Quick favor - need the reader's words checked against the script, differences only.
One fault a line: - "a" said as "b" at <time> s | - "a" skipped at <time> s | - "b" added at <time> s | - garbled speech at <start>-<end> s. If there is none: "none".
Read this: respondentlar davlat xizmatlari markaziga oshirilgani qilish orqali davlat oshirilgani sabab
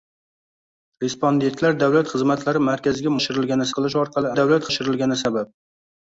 none